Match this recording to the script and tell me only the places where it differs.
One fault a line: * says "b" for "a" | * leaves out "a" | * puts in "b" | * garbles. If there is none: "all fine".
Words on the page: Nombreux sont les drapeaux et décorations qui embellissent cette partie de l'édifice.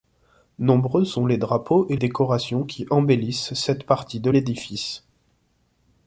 all fine